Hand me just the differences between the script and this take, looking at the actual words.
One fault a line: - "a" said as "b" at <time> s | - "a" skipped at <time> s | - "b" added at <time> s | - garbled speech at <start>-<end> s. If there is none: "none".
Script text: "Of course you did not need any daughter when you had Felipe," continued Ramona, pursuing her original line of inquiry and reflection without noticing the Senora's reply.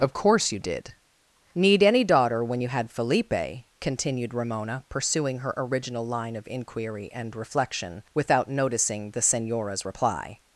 - "not" skipped at 0.9 s